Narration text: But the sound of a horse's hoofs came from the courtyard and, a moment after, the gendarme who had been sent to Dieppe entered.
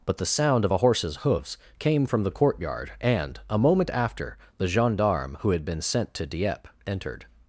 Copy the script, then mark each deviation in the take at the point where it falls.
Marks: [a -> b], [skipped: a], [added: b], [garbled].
But the sound of a horse's hoofs came from the courtyard and, a moment after, the gendarme who had been sent to Dieppe entered.